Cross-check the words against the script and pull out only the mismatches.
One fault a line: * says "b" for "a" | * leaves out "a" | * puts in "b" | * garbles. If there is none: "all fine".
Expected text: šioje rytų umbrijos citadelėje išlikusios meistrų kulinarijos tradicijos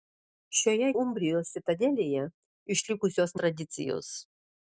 * leaves out "rytų"
* leaves out "meistrų kulinarijos"